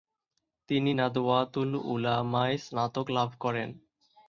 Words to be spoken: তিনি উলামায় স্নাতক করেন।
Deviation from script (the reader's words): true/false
true